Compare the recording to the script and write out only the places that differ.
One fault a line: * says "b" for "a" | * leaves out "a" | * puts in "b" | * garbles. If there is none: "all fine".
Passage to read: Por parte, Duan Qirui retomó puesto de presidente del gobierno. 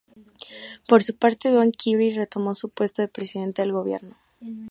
* puts in "su"
* puts in "su"